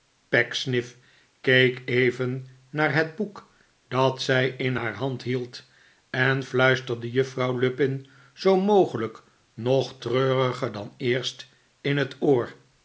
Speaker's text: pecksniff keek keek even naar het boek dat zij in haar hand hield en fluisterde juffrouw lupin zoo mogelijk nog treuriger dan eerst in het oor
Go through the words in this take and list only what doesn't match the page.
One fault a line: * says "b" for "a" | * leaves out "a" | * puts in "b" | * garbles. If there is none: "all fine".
* leaves out "keek"